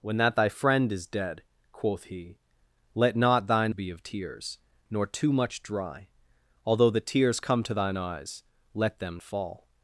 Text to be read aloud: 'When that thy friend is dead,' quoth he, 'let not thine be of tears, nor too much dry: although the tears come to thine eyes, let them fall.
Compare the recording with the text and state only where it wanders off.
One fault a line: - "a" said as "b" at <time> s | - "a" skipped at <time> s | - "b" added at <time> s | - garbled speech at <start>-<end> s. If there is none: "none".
none